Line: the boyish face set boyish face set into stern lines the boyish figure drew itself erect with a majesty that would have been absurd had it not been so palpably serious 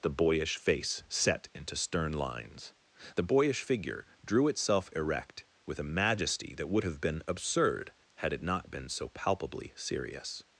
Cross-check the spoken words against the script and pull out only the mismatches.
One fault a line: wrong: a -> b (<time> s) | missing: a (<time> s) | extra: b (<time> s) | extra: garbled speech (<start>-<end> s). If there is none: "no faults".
missing: boyish face set (1.5 s)